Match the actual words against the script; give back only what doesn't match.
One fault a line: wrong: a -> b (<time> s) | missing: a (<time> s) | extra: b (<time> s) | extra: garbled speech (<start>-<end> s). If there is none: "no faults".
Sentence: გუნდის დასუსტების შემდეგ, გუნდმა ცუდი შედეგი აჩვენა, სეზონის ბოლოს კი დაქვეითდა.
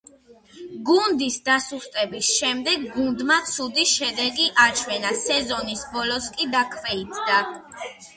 no faults